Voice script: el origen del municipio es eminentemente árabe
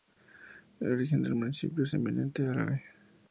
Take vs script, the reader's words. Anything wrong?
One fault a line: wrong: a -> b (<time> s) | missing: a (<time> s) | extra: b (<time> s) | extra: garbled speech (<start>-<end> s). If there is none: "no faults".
no faults